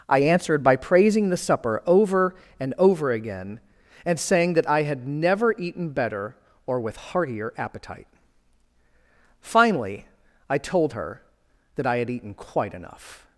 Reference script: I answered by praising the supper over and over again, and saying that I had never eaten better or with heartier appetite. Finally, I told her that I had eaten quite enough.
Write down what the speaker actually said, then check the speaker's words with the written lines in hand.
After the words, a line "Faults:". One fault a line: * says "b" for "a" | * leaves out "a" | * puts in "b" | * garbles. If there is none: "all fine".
I answered by praising the supper over and over again, and saying that I had never eaten better or with heartier appetite. Finally, I told her that I had eaten quite enough.
Faults:
all fine